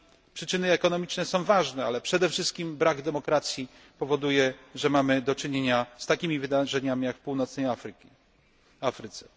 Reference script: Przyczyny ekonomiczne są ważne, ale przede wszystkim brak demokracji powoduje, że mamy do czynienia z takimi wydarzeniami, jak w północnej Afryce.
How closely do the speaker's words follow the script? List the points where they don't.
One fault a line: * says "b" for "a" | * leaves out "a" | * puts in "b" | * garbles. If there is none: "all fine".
all fine